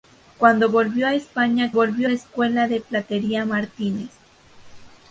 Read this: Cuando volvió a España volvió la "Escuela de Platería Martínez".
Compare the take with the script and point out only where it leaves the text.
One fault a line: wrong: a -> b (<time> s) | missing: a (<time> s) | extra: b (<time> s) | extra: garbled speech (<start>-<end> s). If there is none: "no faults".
no faults